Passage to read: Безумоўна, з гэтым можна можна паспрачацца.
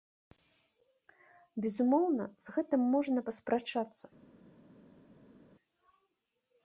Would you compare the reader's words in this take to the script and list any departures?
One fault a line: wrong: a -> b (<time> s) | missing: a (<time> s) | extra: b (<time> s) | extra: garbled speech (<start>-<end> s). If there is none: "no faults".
missing: можна (3.2 s)